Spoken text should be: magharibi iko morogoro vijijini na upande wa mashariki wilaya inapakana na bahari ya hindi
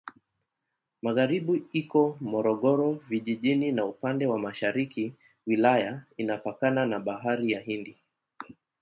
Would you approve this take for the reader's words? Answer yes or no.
yes